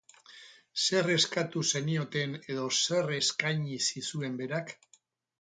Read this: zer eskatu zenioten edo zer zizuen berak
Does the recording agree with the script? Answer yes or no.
no